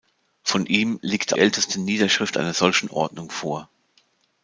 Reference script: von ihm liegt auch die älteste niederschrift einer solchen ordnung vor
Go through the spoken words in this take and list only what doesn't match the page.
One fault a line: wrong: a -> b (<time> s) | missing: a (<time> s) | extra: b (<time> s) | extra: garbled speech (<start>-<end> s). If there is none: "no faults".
missing: auch die (1.4 s)